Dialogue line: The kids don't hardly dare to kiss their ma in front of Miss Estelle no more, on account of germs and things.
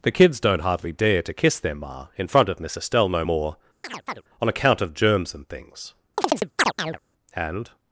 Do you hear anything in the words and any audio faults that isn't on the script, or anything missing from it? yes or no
yes